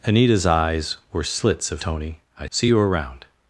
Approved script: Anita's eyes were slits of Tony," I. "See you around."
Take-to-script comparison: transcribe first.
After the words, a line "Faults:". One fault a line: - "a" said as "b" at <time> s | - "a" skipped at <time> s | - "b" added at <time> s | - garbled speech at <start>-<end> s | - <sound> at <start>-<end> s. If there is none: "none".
Anita's eyes were slits of Tony," I. "See you around."
Faults:
none